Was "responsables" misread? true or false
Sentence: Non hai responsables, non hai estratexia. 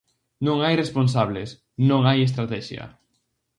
false